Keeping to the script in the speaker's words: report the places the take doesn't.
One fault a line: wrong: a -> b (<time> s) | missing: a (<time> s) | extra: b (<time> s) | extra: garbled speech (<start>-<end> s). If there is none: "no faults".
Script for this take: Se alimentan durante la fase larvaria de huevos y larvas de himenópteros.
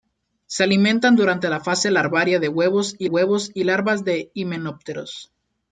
extra: huevos y (3.1 s)